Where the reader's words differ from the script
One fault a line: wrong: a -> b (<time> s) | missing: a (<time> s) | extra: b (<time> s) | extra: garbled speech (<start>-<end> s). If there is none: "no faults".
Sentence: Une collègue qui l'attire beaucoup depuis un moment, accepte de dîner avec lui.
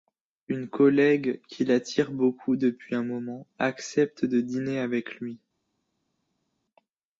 no faults